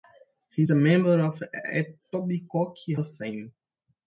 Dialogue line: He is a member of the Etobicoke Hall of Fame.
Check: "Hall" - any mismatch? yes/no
yes